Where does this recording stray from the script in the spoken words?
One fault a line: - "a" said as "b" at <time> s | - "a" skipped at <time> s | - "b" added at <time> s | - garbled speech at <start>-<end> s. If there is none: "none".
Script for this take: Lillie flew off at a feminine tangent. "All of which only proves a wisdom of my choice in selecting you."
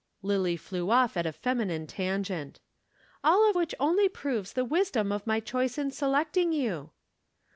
- "a" said as "the" at 4.5 s